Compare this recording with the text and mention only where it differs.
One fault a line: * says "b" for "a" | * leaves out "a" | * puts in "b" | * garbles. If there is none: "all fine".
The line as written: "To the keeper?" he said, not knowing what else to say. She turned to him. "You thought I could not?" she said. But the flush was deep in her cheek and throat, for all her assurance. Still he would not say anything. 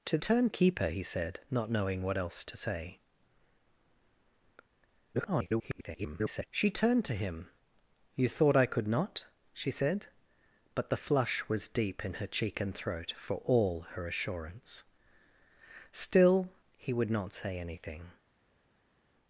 * says "turned" for "the"
* garbles